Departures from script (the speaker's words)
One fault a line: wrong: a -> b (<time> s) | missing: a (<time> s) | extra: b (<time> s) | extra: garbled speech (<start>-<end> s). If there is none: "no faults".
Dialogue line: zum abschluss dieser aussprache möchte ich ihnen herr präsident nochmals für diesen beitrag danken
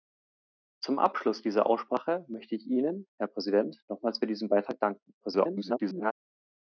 extra: garbled speech (5.2-6.1 s)